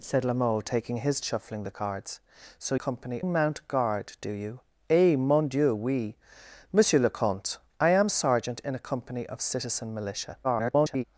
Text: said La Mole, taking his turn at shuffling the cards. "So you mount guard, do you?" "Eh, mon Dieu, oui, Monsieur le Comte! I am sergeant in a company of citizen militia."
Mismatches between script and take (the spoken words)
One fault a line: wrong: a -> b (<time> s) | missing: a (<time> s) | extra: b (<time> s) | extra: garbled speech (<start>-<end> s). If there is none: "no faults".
missing: turn at (1.2 s)
wrong: you -> company (2.7 s)
extra: garbled speech (10.4-11.0 s)